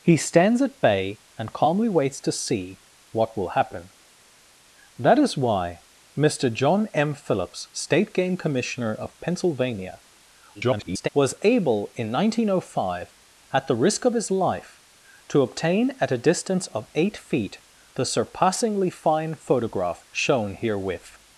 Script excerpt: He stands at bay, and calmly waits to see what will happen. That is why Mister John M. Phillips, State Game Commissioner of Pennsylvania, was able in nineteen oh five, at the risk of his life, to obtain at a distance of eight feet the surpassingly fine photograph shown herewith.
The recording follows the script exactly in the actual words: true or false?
false